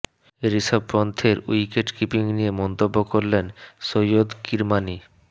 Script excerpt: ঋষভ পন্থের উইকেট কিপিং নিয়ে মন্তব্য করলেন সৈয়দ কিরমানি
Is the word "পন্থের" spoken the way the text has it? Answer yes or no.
yes